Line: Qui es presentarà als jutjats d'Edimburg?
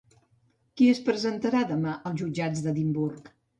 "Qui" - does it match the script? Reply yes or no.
yes